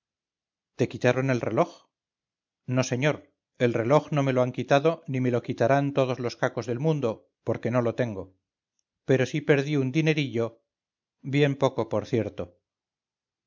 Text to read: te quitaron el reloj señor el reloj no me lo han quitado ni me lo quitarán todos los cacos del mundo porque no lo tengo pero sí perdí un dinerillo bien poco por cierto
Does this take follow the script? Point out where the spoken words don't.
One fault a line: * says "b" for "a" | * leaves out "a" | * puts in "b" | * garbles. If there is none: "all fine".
* puts in "no"